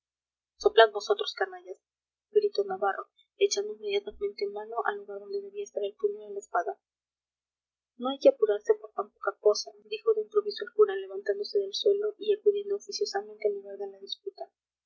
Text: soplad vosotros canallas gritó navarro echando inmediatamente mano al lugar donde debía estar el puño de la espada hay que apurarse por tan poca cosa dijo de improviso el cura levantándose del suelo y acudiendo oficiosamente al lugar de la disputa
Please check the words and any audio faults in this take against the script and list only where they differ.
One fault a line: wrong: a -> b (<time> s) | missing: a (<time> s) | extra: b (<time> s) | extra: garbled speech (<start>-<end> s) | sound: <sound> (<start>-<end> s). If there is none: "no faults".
extra: no (8.0 s)